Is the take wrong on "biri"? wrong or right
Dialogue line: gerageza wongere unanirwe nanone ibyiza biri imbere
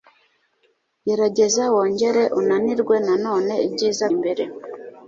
wrong